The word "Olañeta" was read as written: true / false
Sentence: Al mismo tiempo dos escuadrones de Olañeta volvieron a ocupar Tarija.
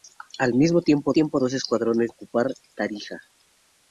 false